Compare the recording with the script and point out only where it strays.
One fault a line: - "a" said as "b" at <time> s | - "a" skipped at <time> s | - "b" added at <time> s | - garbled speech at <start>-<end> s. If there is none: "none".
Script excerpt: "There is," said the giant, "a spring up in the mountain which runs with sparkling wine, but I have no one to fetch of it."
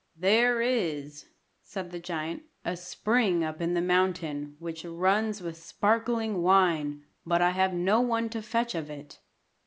none